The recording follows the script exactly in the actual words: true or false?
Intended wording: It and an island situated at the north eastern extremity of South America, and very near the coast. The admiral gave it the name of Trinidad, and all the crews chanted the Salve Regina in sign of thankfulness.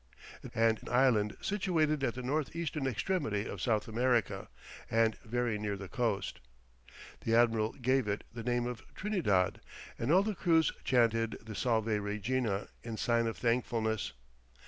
true